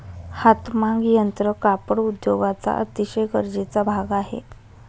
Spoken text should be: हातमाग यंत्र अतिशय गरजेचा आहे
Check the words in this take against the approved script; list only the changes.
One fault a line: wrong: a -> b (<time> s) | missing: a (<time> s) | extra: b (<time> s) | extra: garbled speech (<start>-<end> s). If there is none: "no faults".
extra: कापड उद्योगाचा (1.6 s)
extra: भाग (3.8 s)